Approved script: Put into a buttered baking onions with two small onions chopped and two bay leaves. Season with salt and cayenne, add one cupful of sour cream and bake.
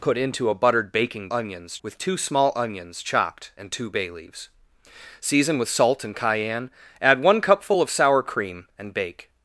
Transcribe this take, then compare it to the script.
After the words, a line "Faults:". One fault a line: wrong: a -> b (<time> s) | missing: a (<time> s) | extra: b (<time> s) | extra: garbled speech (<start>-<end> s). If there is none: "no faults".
Put into a buttered baking onions with two small onions chopped and two bay leaves. Season with salt and cayenne, add one cupful of sour cream and bake.
Faults:
no faults